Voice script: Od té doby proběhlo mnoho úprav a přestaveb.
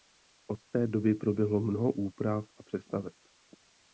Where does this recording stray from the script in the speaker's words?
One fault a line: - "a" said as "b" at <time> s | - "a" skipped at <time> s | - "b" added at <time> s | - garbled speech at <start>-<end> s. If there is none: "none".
none